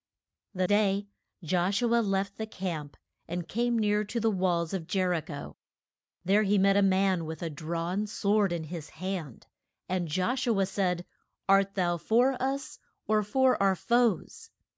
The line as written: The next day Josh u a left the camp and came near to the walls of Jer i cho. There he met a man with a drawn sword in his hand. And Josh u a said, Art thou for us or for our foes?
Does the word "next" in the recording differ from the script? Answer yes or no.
yes